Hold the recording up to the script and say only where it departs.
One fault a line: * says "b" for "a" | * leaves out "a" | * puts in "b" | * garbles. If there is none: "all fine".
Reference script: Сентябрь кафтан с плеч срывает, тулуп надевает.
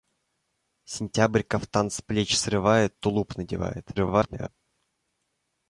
* garbles